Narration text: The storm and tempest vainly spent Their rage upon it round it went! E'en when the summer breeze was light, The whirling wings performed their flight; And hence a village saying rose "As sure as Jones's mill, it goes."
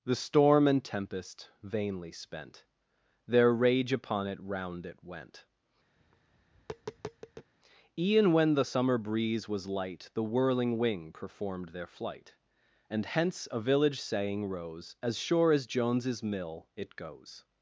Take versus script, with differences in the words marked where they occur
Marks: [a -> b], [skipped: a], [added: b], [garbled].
The storm and tempest vainly spent Their rage upon it round it went! E'en when the summer breeze was light, The whirling [wings -> wing] performed their flight; And hence a village saying rose "As sure as Jones's mill, it goes."